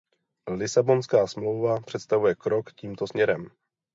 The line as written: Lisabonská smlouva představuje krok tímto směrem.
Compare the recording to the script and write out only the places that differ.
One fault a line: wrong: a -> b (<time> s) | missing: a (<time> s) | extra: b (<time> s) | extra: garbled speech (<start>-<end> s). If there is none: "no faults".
no faults